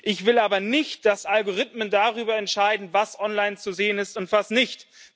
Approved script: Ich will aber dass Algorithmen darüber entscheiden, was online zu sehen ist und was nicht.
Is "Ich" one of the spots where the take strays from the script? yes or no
no